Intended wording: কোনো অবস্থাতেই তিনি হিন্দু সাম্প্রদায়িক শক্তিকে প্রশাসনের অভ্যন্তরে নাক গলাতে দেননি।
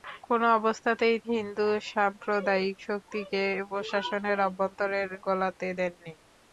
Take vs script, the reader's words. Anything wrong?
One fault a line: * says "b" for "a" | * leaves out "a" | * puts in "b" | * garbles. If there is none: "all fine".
* leaves out "তিনি"
* leaves out "নাক"